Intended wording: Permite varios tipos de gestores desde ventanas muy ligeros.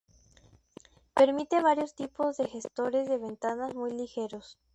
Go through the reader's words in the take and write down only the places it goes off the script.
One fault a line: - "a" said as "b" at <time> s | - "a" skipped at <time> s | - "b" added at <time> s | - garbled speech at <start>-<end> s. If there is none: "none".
- "desde" said as "de" at 3.1 s